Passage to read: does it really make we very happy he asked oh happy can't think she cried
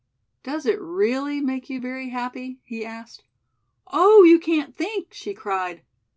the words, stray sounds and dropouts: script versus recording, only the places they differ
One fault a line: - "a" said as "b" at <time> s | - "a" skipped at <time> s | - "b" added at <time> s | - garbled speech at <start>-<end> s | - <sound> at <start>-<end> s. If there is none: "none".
- "we" said as "you" at 1.7 s
- "happy" said as "you" at 4.2 s